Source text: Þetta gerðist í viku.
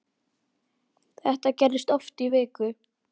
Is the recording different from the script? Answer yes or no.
yes